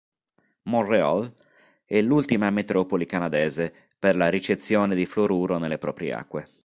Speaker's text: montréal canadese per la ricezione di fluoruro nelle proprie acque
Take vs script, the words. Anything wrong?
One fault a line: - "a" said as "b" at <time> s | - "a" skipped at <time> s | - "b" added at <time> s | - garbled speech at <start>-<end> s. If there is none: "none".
- "è l'ultima metropoli" added at 1.9 s